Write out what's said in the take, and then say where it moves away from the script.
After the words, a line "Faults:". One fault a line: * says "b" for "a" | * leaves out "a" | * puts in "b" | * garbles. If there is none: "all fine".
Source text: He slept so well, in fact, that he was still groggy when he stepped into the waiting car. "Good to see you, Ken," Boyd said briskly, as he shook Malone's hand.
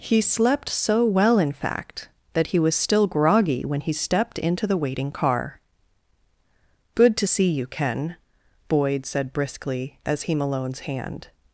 He slept so well, in fact, that he was still groggy when he stepped into the waiting car. "Good to see you, Ken," Boyd said briskly, as he Malone's hand.
Faults:
* leaves out "shook"